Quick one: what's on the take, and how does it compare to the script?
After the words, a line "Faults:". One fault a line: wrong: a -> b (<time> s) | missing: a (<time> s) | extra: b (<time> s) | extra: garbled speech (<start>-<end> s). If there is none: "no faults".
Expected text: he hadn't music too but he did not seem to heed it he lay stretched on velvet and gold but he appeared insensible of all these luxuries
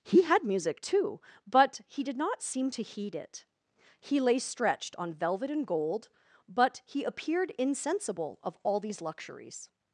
he had music too but he did not seem to heed it he lay stretched on velvet and gold but he appeared insensible of all these luxuries
Faults:
wrong: hadn't -> had (0.2 s)